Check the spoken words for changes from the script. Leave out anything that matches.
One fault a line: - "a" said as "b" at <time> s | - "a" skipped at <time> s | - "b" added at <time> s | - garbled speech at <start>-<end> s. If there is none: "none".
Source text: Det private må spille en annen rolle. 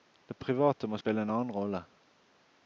none